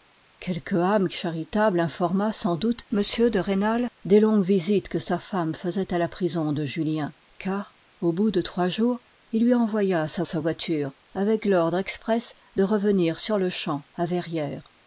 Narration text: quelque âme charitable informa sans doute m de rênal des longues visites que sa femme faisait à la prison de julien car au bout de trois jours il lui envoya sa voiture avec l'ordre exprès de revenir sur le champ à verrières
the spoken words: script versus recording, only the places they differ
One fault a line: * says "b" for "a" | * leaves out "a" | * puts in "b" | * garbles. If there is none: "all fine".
* puts in "sa"